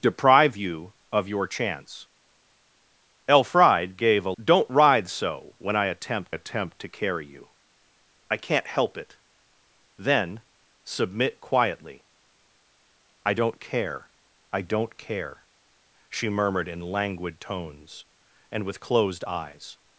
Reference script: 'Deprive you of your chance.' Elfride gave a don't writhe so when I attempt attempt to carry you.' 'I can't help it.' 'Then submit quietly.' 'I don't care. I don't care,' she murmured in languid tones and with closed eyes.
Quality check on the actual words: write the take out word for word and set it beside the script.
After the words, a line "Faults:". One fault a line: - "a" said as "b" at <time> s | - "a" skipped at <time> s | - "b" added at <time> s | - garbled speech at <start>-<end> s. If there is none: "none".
'Deprive you of your chance.' Elfride gave a don't writhe so when I attempt attempt to carry you.' 'I can't help it.' 'Then submit quietly.' 'I don't care. I don't care,' she murmured in languid tones and with closed eyes.
Faults:
none